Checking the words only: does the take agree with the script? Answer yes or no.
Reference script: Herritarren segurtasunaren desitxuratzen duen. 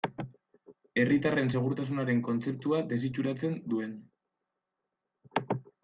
no